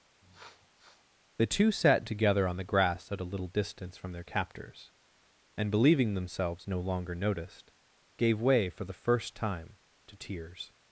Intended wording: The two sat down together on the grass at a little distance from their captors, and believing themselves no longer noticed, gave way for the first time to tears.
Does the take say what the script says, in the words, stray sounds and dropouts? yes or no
no